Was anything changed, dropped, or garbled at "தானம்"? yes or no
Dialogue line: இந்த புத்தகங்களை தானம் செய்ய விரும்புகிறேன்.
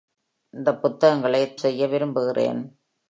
yes